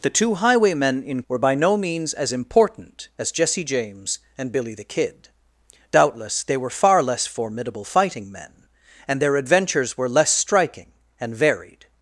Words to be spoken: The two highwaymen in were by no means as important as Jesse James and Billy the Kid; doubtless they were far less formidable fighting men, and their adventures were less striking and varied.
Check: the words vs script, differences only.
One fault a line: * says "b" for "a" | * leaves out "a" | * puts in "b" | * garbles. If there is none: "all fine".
all fine